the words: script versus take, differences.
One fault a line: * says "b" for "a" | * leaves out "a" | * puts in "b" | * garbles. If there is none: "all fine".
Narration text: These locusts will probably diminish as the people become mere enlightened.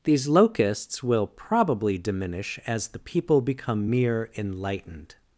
all fine